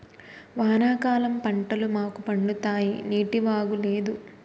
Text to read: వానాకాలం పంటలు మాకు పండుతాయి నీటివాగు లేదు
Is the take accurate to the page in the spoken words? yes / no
yes